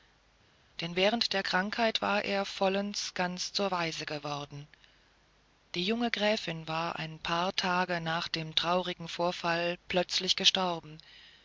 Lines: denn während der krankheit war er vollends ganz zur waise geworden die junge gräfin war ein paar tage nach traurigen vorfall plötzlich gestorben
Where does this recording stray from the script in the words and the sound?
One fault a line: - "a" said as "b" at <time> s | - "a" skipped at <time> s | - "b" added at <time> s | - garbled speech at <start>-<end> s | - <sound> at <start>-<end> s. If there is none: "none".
- "dem" added at 8.3 s